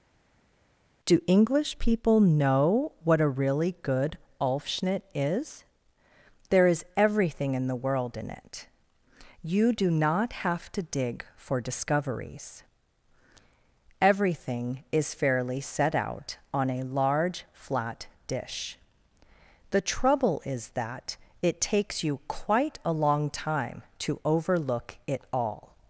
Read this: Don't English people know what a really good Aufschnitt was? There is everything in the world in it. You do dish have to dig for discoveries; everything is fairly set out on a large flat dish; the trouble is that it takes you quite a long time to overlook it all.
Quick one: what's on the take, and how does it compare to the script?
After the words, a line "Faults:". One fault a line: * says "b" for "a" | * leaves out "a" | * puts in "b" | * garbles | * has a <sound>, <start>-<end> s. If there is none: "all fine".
Do English people know what a really good Aufschnitt is? There is everything in the world in it. You do not have to dig for discoveries; everything is fairly set out on a large flat dish; the trouble is that it takes you quite a long time to overlook it all.
Faults:
* says "Do" for "Don't"
* says "is" for "was"
* says "not" for "dish"